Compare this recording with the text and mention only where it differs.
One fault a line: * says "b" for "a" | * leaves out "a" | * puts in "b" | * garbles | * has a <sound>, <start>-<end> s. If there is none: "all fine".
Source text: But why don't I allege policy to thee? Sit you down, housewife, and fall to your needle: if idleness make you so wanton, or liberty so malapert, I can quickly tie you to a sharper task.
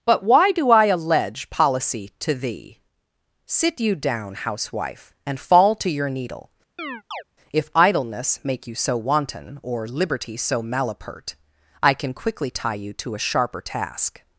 * says "do" for "don't"
* has a chirp, 6.8-7.2 s